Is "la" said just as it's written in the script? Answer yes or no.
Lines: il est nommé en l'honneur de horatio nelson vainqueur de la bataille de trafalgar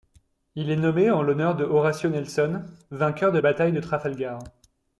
no